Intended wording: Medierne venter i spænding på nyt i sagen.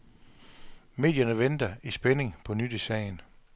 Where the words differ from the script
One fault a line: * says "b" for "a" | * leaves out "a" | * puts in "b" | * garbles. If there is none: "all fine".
all fine